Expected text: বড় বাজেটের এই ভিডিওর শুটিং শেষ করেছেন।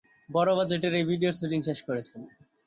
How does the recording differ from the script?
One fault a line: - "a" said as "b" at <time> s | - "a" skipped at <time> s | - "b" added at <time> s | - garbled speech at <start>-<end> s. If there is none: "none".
none